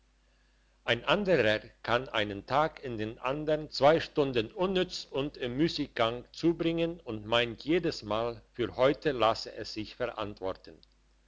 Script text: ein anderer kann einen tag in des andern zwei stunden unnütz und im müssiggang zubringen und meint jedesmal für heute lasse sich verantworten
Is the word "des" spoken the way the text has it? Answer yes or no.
no